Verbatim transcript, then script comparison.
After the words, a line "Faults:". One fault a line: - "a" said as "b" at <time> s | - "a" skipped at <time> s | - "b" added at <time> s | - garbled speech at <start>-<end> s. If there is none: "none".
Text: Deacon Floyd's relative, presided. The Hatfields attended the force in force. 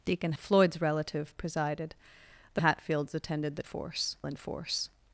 Deacon Floyd's relative, presided. The Hatfields attended the force in force.
Faults:
none